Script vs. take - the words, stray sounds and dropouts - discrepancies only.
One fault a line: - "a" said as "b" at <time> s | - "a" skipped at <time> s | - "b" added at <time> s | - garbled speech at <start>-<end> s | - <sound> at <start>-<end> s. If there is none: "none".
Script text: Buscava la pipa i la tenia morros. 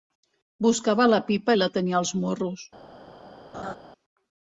- "als" added at 2.0 s
- laugh at 3.5-3.8 s